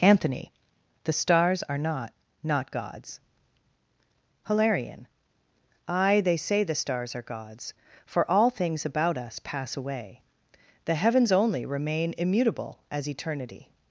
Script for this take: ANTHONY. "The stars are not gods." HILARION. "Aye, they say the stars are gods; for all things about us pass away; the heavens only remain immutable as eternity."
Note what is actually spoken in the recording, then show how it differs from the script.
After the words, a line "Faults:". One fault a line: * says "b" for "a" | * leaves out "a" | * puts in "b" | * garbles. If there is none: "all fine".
ANTHONY. "The stars are not not gods." HILARION. "Aye, they say the stars are gods; for all things about us pass away; the heavens only remain immutable as eternity."
Faults:
* puts in "not"